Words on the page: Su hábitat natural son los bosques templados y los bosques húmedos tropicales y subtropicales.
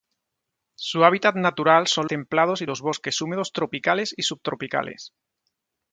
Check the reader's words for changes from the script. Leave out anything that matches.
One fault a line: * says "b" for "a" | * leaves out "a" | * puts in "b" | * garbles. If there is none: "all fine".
* leaves out "los bosques"